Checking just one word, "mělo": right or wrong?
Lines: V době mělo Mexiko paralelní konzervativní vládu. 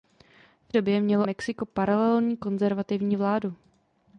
right